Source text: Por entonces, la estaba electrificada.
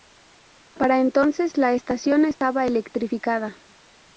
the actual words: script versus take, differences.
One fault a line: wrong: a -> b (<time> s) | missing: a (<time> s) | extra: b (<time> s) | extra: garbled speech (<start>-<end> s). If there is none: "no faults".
wrong: Por -> Para (0.7 s)
extra: estación (1.7 s)